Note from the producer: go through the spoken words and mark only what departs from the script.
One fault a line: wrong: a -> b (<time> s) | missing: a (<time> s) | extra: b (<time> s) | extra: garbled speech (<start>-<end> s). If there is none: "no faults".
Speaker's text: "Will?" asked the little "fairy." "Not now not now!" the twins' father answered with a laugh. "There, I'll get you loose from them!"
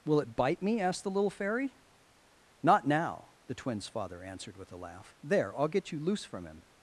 extra: it bite me (0.2 s)
missing: not now (3.3 s)
wrong: them -> him (6.4 s)